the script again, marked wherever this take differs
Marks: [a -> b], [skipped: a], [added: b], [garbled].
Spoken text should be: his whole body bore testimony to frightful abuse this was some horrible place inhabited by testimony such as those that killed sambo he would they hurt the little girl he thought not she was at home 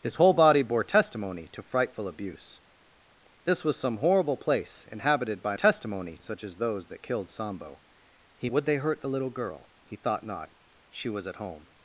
his whole body bore testimony to frightful abuse this was some horrible place inhabited by testimony such as those that killed sambo he would they hurt the little girl he thought not she was at home